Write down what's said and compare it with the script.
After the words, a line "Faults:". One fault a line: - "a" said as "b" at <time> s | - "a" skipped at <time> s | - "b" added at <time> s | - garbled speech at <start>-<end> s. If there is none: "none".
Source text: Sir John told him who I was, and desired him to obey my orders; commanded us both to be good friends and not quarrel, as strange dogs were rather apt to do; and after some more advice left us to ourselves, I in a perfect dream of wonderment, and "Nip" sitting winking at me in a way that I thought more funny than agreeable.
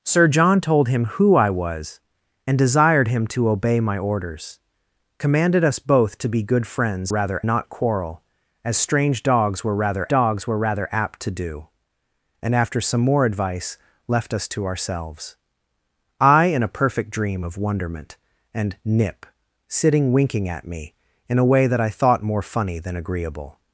Sir John told him who I was, and desired him to obey my orders; commanded us both to be good friends rather not quarrel, as strange dogs were rather dogs were rather apt to do; and after some more advice left us to ourselves, I in a perfect dream of wonderment, and "Nip" sitting winking at me in a way that I thought more funny than agreeable.
Faults:
- "and" said as "rather" at 7.1 s
- "dogs were rather" added at 10.1 s